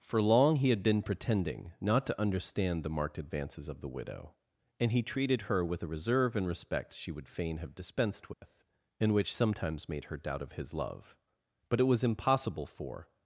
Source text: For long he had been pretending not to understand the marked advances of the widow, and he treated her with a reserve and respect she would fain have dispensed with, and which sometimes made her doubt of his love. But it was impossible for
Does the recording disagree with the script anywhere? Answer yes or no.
no